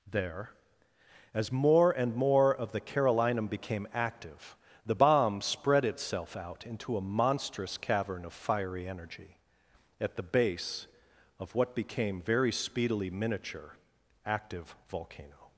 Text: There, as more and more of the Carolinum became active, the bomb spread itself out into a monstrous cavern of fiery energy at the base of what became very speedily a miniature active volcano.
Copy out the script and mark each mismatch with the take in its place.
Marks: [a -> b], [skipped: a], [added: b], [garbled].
There, as more and more of the Carolinum became active, the bomb spread itself out into a monstrous cavern of fiery energy at the base of what became very speedily [skipped: a] miniature active volcano.